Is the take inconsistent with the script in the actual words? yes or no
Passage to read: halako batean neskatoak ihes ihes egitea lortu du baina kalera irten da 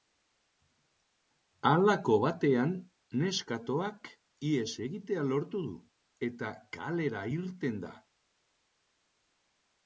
yes